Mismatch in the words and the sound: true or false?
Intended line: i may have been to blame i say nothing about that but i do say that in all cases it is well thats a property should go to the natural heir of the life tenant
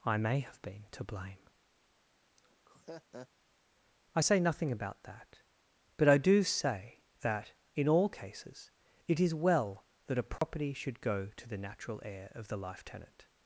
true